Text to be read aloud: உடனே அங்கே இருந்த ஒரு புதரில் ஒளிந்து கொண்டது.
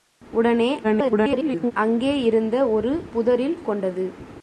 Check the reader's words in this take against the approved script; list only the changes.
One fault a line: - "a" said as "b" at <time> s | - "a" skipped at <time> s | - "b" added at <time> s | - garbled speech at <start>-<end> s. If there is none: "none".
- garbled speech at 0.8-1.7 s
- "ஒளிந்து" skipped at 3.6 s